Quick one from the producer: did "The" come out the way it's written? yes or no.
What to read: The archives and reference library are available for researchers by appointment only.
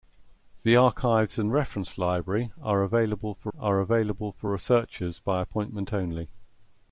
yes